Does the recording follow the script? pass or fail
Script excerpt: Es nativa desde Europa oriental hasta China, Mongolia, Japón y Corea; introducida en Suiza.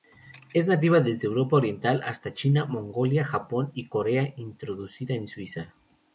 pass